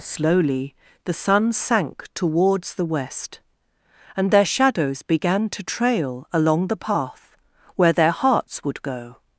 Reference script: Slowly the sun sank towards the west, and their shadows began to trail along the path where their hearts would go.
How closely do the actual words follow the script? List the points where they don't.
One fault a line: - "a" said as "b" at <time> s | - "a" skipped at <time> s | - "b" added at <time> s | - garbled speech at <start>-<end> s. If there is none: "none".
none